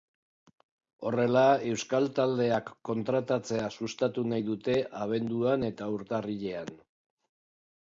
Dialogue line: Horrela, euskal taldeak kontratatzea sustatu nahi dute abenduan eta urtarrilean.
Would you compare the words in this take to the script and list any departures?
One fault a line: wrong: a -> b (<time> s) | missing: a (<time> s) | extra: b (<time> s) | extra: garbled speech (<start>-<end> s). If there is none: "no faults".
no faults